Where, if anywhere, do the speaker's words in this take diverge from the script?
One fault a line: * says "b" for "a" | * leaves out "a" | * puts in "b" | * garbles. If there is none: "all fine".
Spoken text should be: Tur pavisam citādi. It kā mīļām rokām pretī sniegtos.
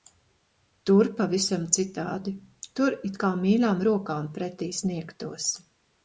* puts in "Tur"